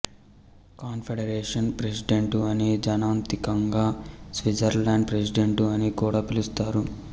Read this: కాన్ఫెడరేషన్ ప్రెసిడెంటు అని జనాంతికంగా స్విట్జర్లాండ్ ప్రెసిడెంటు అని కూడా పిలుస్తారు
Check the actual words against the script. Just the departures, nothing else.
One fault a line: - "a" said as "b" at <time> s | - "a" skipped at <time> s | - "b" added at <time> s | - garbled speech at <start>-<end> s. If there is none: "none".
none